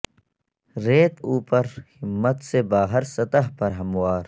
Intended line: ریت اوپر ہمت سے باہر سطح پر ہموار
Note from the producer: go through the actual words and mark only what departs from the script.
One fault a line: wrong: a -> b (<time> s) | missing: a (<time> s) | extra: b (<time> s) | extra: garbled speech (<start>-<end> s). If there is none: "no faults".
no faults